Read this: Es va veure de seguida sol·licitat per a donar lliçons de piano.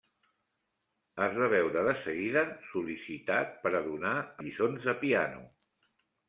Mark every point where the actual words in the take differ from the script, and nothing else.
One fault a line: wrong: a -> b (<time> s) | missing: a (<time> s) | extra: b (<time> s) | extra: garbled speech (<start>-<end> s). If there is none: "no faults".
no faults